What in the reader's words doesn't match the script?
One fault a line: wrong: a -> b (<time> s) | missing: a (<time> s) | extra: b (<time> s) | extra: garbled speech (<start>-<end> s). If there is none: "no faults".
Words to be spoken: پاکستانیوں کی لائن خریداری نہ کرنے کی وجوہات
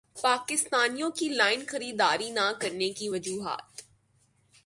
no faults